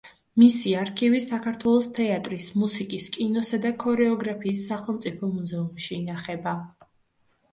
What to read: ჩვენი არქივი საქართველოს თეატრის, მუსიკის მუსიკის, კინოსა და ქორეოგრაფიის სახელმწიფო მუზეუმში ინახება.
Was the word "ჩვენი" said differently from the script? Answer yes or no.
yes